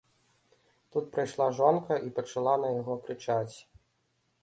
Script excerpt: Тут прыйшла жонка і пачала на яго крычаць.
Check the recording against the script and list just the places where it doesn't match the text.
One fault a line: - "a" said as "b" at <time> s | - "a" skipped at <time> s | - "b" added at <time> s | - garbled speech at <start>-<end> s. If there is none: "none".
none